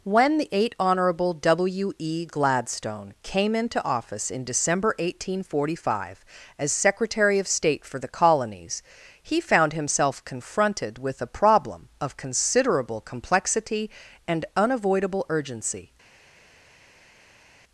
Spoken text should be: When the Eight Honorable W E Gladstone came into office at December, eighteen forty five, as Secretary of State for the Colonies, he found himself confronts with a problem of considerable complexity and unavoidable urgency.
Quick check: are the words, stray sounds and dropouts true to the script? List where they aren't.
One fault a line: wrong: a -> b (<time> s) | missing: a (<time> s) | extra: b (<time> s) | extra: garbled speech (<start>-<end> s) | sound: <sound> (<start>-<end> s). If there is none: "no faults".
wrong: at -> in (4.3 s)
wrong: confronts -> confronted (10.2 s)